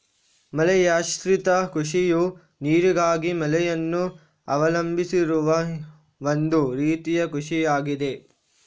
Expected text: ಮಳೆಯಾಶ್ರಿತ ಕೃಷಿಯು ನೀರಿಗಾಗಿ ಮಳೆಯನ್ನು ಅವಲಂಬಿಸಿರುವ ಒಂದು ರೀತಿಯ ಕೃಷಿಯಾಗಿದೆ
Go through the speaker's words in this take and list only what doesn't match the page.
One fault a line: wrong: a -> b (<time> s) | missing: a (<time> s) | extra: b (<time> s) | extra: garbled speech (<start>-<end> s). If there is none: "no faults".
no faults